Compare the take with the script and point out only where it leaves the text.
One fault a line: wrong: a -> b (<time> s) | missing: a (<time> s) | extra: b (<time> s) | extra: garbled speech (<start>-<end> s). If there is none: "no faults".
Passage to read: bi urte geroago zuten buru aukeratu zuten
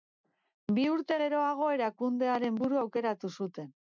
wrong: zuten -> erakundearen (1.8 s)